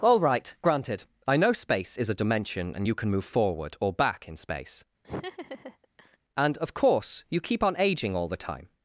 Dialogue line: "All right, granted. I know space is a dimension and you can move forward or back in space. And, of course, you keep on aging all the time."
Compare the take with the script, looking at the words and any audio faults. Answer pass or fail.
fail